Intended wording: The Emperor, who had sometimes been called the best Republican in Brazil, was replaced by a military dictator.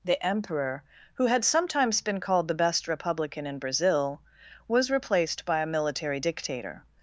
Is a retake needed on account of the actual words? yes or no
no